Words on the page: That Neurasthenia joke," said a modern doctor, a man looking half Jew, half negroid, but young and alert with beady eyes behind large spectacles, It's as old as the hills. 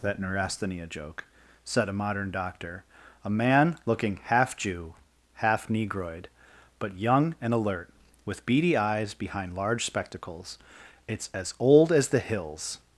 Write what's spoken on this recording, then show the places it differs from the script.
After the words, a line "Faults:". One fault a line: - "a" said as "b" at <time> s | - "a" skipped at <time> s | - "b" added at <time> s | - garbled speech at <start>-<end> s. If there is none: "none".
That Neurasthenia joke," said a modern doctor, a man looking half Jew, half negroid, but young and alert with beady eyes behind large spectacles, It's as old as the hills.
Faults:
none